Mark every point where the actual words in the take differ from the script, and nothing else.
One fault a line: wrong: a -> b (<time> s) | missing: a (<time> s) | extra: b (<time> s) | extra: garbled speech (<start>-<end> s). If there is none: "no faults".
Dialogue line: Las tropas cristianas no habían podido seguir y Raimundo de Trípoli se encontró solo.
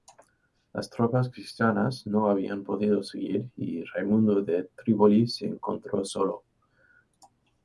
no faults